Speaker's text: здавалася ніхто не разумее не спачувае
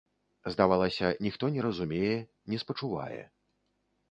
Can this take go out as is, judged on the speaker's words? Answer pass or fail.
pass